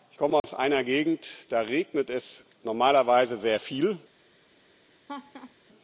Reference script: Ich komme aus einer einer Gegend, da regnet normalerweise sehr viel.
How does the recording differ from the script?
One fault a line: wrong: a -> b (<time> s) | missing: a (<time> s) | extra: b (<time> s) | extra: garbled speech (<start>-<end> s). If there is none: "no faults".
missing: einer (0.8 s)
extra: es (2.1 s)